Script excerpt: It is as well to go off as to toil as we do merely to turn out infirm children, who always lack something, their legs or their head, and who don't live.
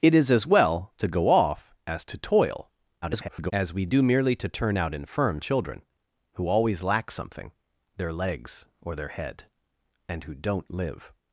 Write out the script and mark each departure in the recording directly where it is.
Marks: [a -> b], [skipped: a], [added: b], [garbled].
It is as well to go off as to toil [garbled] as we do merely to turn out infirm children, who always lack something, their legs or their head, and who don't live.